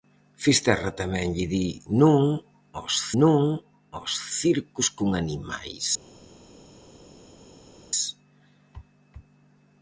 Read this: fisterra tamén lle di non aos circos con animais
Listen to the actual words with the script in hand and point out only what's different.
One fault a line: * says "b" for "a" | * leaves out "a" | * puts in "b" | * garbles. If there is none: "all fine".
* puts in "non aos"